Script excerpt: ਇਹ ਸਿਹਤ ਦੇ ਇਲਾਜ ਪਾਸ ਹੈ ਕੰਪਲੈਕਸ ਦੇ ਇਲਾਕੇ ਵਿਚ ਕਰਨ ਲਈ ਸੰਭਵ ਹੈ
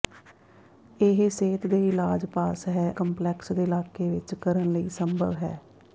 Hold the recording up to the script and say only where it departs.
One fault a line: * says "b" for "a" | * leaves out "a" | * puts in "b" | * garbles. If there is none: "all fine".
all fine